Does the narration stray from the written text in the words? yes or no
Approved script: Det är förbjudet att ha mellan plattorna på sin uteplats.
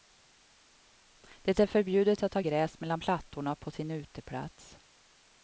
yes